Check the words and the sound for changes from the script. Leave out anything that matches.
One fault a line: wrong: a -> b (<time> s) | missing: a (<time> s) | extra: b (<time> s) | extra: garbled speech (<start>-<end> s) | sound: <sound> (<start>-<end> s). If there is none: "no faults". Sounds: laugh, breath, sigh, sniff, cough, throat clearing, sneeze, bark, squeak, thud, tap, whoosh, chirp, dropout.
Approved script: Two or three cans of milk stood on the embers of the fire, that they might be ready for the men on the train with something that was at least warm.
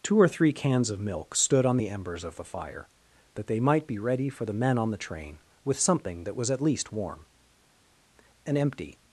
extra: An empty (8.5 s)